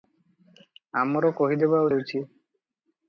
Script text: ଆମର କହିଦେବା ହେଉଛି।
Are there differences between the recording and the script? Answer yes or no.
no